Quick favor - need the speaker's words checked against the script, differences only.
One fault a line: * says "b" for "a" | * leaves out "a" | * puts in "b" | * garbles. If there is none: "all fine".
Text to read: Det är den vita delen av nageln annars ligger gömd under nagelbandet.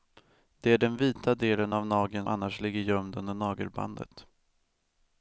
all fine